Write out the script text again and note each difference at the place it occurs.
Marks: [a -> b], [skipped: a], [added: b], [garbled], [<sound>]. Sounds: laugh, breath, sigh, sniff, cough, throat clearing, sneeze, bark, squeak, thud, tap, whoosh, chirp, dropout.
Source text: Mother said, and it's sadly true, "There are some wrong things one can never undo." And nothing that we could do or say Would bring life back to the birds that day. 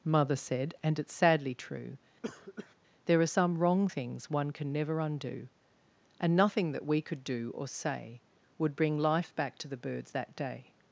Mother said, and it's sadly true, [cough] "There are some wrong things one can never undo." And nothing that we could do or say Would bring life back to the birds that day.